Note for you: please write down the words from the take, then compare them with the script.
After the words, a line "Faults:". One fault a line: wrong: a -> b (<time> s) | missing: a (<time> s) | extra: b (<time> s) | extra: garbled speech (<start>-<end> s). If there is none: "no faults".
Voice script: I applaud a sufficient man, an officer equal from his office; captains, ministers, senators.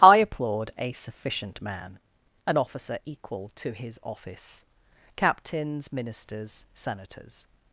I applaud a sufficient man, an officer equal to his office; captains, ministers, senators.
Faults:
wrong: from -> to (3.6 s)